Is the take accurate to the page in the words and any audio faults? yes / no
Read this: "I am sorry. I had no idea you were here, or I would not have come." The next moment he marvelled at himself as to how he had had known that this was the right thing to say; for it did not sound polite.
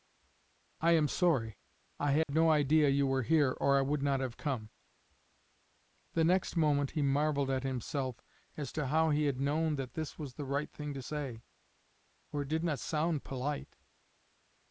no